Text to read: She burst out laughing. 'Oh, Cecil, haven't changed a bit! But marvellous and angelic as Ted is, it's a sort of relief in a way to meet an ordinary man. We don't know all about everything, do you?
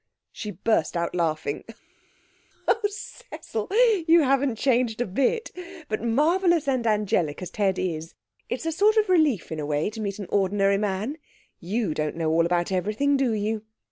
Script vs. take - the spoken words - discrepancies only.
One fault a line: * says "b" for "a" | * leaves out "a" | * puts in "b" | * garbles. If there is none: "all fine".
* puts in "you"
* says "You" for "We"